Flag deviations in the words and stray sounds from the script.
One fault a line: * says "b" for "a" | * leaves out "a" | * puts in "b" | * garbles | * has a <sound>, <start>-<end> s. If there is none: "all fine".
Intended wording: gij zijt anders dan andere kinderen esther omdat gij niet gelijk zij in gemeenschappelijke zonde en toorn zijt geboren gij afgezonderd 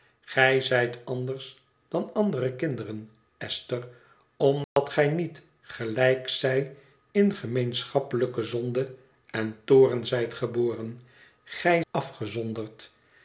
* has a dropout, 4.6-4.8 s